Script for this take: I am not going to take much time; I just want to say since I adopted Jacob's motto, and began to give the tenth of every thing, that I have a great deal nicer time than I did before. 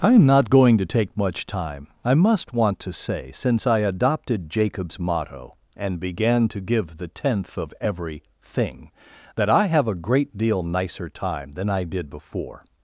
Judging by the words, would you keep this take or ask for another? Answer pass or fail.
fail